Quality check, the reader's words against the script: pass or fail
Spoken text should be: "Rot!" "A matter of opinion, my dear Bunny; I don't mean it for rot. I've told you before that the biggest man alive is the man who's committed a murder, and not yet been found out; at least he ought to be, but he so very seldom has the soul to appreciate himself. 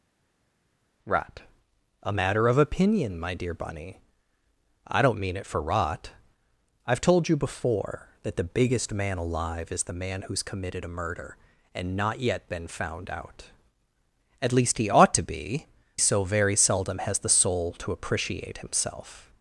fail